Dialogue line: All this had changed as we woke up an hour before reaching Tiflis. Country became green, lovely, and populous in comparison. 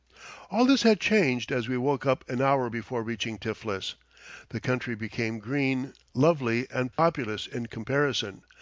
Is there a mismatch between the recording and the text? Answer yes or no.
yes